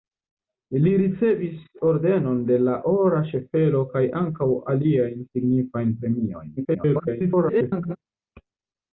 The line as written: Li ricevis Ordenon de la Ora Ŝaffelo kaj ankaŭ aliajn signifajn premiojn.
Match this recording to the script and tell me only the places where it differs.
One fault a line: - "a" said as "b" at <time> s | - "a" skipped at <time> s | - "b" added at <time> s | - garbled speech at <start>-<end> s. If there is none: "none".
- garbled speech at 6.6-8.0 s